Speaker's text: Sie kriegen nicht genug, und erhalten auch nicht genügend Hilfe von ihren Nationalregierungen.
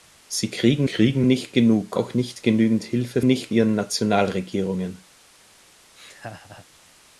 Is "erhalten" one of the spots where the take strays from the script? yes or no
yes